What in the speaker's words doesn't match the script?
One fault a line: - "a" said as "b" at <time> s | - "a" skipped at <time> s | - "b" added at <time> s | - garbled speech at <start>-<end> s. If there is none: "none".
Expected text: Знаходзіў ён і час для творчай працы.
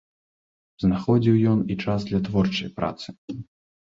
none